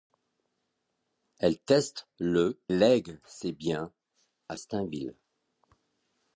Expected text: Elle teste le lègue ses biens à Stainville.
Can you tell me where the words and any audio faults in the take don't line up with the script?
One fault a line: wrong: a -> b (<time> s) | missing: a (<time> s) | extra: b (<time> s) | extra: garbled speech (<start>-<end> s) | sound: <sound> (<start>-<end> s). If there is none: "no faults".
no faults